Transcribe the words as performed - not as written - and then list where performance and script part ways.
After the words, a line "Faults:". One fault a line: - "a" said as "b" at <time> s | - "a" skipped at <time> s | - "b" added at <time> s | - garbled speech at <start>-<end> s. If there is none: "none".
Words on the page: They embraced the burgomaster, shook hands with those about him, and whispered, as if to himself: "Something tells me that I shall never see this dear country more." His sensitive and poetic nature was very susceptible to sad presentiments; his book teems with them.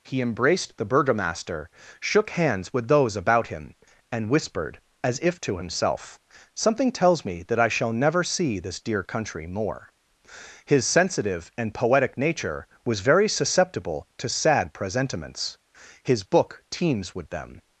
He embraced the burgomaster, shook hands with those about him, and whispered, as if to himself: "Something tells me that I shall never see this dear country more." His sensitive and poetic nature was very susceptible to sad presentiments; his book teems with them.
Faults:
- "They" said as "He" at 0.0 s